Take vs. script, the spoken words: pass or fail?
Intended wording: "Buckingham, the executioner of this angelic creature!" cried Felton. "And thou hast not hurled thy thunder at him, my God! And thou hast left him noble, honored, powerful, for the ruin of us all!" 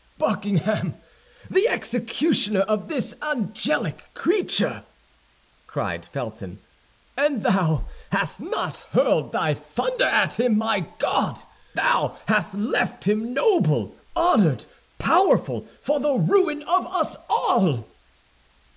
fail